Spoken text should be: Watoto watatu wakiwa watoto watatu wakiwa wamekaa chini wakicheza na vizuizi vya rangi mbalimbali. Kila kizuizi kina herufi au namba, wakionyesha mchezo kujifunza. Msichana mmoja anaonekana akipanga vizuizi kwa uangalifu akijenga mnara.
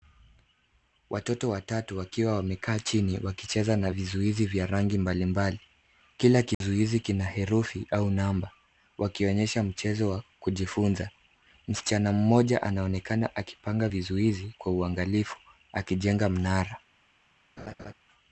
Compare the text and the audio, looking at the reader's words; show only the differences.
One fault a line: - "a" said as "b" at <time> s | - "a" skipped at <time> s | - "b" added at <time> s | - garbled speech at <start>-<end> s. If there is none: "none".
- "watoto watatu wakiwa" skipped at 2.4 s
- "wa" added at 10.1 s